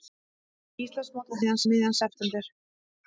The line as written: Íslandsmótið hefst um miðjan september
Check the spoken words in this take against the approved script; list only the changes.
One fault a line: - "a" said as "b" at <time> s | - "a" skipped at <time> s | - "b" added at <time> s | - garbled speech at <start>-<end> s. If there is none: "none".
- "hefst" said as "miðjan" at 1.4 s